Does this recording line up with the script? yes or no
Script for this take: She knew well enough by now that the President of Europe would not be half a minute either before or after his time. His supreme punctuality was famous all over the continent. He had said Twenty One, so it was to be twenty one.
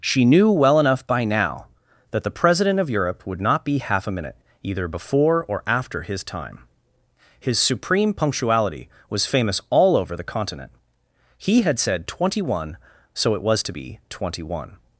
yes